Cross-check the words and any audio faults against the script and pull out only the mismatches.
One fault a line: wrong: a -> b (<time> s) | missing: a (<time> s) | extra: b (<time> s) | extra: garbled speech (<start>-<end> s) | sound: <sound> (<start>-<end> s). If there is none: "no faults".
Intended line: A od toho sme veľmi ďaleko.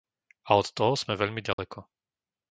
sound: dropout (1.5-1.6 s)